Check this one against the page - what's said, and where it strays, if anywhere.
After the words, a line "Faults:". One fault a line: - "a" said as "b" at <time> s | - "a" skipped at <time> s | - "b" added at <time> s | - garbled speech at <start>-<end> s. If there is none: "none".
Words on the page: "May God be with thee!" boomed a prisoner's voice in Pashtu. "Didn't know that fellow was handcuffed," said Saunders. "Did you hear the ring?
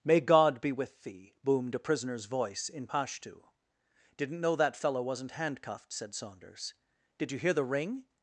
"May God be with thee!" boomed a prisoner's voice in Pashtu. "Didn't know that fellow wasn't handcuffed," said Saunders. "Did you hear the ring?
Faults:
- "was" said as "wasn't" at 5.0 s